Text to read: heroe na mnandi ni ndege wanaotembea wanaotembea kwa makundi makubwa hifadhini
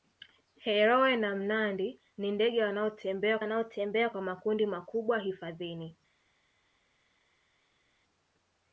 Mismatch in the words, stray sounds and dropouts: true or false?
false